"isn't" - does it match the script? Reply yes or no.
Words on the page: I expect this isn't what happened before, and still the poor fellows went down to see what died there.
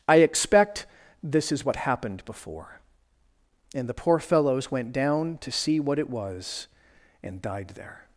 no